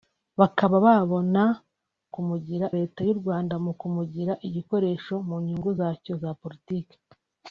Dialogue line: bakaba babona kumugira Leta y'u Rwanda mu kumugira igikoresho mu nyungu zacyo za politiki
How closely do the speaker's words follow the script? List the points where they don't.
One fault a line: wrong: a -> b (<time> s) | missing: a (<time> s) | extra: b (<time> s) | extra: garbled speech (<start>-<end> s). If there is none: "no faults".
no faults